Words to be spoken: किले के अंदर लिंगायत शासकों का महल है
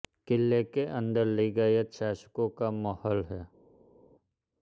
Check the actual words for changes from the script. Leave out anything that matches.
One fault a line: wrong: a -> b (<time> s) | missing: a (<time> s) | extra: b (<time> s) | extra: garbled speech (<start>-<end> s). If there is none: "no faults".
no faults